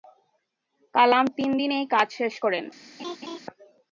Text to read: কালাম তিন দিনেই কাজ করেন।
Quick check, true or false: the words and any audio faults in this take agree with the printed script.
false